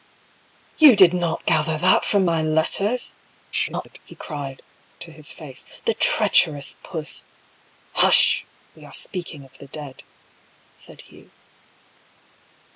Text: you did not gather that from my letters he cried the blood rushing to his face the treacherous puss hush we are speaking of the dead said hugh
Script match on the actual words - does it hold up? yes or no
no